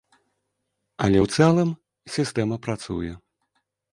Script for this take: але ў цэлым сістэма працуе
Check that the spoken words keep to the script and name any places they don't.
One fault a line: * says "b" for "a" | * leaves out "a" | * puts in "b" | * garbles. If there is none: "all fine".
all fine